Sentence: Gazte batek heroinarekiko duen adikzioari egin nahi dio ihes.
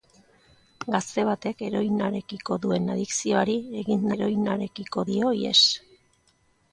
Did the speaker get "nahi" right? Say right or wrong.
wrong